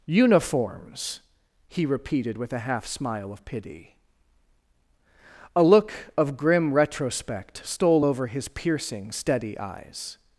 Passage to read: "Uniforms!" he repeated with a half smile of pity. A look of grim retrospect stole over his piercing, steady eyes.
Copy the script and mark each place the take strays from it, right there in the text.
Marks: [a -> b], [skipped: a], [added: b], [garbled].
"Uniforms!" he repeated with a half smile of pity. A look of grim retrospect stole over his piercing, steady eyes.